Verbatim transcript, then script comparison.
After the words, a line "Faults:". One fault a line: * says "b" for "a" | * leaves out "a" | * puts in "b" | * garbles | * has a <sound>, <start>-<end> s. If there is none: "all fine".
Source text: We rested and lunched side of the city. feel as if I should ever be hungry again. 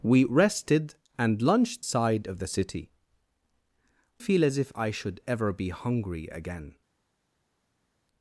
We rested and lunched side of the city. feel as if I should ever be hungry again.
Faults:
all fine